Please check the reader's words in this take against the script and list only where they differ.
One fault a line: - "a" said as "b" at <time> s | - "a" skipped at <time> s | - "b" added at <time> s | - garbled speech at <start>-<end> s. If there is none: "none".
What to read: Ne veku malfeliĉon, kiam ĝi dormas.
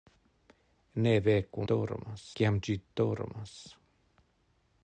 - "malfeliĉon" said as "dormas" at 1.7 s